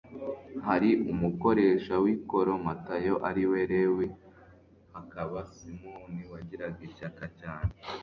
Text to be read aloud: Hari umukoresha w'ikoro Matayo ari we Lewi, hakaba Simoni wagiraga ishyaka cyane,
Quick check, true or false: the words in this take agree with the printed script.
true